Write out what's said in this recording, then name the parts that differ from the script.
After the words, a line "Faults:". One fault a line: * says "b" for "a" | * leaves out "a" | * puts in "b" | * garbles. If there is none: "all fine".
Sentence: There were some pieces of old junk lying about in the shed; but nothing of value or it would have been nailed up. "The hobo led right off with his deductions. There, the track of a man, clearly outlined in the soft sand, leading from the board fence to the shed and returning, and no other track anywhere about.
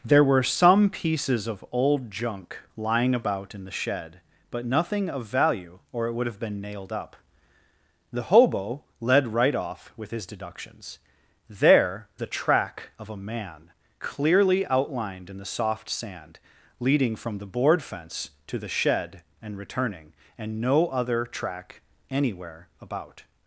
There were some pieces of old junk lying about in the shed; but nothing of value or it would have been nailed up. "The hobo led right off with his deductions. There, the track of a man, clearly outlined in the soft sand, leading from the board fence to the shed and returning, and no other track anywhere about.
Faults:
all fine